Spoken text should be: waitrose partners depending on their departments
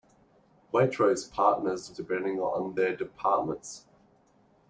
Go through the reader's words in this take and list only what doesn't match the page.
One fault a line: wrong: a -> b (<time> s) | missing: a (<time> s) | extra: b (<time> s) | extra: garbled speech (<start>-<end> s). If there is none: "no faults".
no faults